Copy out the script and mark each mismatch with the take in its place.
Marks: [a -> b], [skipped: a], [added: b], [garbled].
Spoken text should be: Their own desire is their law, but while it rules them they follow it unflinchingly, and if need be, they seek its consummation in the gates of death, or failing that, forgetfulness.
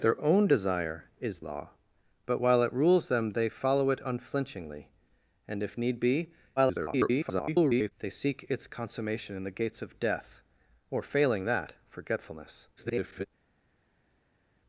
Their own desire is [skipped: their] law, but while it rules them they follow it unflinchingly, and if need be, [garbled] they seek its consummation in the gates of death, or failing that, forgetfulness. [garbled]